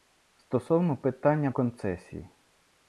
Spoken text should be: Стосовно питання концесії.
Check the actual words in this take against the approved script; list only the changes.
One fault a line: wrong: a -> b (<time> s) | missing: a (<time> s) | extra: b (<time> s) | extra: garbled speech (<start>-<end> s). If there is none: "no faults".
no faults